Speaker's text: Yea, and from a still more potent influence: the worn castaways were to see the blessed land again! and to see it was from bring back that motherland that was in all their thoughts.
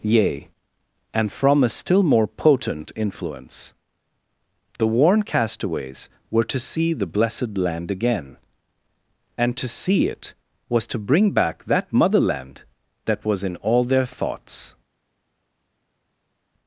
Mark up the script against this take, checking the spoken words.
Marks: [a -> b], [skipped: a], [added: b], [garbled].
Yea, and from a still more potent influence: the worn castaways were to see the blessed land again! and to see it was [from -> to] bring back that motherland that was in all their thoughts.